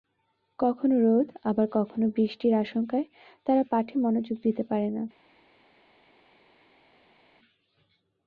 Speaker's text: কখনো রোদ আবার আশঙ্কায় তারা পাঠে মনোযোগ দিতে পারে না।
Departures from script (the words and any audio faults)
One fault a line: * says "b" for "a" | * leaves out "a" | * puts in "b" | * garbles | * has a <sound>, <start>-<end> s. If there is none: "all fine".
* puts in "কখনো বৃষ্টির"